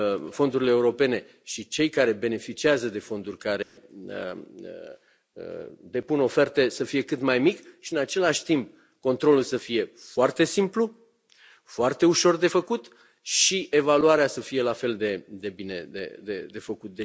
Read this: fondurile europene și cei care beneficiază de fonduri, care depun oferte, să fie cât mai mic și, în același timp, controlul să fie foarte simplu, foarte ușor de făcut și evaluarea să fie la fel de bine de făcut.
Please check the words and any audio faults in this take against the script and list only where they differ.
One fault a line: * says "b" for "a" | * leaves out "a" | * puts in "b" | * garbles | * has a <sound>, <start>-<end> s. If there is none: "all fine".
* has a dropout, 3.6-3.8 s